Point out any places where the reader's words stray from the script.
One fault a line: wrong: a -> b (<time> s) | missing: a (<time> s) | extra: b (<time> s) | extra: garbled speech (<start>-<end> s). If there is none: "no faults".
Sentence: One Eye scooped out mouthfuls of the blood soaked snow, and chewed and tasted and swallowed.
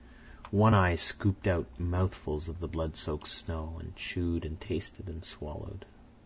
no faults